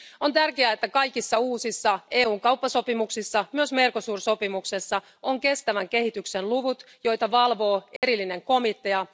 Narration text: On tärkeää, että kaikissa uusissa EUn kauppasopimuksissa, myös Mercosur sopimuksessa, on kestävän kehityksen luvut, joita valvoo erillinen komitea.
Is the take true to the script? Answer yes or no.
yes